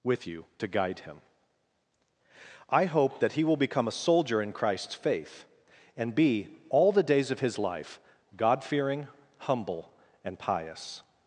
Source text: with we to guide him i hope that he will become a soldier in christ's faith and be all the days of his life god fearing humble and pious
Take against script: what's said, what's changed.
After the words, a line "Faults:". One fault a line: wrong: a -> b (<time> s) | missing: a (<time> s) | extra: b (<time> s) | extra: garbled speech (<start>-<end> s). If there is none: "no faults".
with you to guide him i hope that he will become a soldier in christ's faith and be all the days of his life god fearing humble and pious
Faults:
wrong: we -> you (0.2 s)